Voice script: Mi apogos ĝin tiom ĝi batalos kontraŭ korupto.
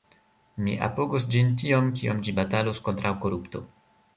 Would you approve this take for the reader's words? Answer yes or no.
no